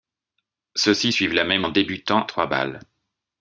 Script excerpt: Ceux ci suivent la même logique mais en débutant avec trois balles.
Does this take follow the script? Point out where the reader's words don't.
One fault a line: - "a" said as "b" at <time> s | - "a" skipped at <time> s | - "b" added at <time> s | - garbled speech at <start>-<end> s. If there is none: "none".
- "logique mais" skipped at 1.7 s
- "avec" skipped at 2.3 s